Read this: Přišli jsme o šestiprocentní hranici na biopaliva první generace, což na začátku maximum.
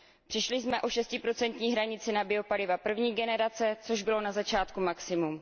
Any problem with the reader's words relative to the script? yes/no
yes